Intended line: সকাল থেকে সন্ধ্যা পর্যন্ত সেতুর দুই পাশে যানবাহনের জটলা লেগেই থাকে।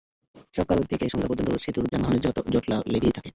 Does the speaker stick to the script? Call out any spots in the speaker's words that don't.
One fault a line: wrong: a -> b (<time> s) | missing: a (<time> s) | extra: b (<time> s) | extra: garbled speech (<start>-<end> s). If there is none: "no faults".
missing: দুই পাশে (1.9 s)